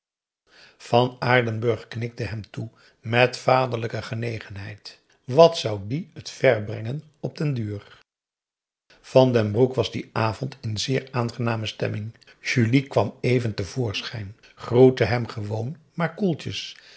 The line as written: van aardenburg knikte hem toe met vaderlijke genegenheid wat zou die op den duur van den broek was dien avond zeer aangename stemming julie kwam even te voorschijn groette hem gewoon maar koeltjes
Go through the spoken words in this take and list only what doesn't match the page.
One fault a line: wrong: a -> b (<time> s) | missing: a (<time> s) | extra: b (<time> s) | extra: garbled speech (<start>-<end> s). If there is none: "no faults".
extra: het ver brengen (6.1 s)
extra: in (10.6 s)